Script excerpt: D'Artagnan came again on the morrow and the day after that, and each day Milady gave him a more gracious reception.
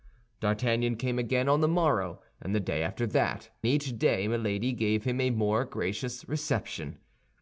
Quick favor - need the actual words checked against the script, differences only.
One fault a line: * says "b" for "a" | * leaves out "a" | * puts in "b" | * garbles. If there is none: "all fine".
* leaves out "and"